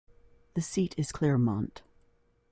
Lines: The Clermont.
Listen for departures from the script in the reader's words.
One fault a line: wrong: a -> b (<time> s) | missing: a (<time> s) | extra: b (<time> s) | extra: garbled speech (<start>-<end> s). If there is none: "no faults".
extra: seat is (0.6 s)